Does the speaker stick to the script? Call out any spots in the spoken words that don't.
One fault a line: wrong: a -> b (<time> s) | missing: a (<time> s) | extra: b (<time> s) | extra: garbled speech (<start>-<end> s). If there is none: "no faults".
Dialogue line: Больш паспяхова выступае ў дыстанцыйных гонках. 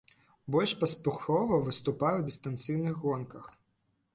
no faults